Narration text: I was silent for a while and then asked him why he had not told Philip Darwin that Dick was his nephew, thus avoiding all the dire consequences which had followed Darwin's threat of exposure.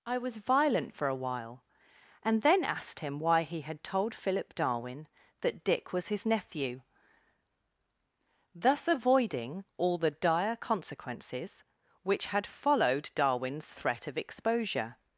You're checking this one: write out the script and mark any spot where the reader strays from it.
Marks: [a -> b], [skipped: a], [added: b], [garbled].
I was [silent -> violent] for a while and then asked him why he had [skipped: not] told Philip Darwin that Dick was his nephew, thus avoiding all the dire consequences which had followed Darwin's threat of exposure.